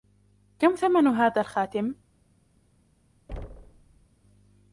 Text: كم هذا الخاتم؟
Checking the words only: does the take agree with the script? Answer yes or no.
no